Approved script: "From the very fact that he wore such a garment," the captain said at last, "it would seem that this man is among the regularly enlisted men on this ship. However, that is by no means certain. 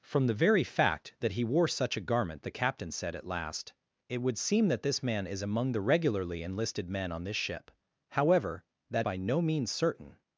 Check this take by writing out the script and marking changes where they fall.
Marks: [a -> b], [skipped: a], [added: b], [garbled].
"From the very fact that he wore such a garment," the captain said at last, "it would seem that this man is among the regularly enlisted men on this ship. However, that [skipped: is] by no means certain.